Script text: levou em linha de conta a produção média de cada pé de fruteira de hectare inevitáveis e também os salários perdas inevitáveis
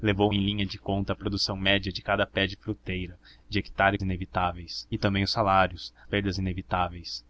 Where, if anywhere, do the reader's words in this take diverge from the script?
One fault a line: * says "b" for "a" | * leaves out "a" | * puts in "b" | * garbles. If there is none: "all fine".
all fine